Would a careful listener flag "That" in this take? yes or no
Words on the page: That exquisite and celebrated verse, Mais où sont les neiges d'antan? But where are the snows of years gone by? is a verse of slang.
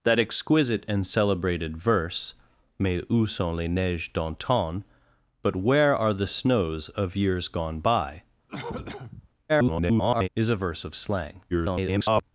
no